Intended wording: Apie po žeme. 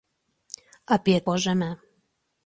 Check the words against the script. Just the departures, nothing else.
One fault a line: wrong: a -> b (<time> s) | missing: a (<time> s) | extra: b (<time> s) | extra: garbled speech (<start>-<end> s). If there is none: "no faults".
no faults